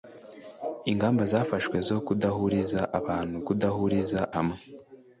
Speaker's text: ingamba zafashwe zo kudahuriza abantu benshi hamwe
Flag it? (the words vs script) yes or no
yes